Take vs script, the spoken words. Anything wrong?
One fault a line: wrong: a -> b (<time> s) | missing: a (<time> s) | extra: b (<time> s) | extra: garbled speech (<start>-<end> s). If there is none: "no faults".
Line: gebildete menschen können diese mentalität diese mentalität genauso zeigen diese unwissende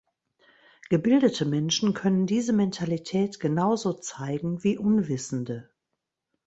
missing: diese mentalität (3.4 s)
wrong: diese -> wie (4.6 s)